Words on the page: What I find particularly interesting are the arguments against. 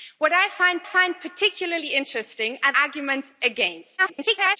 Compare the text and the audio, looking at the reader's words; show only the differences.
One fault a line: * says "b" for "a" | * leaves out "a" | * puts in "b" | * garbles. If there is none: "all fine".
* puts in "find"
* leaves out "the"
* garbles